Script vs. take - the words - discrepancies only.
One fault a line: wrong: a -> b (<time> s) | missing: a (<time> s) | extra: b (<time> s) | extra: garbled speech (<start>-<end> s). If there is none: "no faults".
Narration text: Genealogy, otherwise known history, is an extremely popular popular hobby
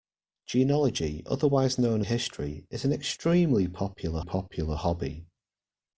no faults